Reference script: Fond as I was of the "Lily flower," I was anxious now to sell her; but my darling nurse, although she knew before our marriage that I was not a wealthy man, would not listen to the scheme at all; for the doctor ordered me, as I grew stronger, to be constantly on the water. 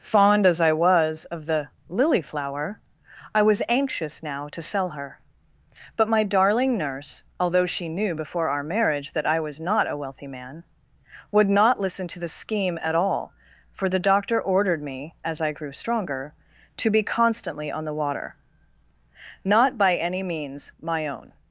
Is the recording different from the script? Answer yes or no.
yes